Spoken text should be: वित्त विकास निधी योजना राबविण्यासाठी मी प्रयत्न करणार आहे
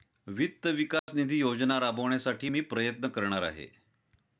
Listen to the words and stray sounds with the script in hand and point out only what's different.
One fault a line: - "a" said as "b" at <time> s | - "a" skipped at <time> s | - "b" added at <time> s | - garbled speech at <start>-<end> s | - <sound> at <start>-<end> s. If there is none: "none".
- dropout at 1.0-1.1 s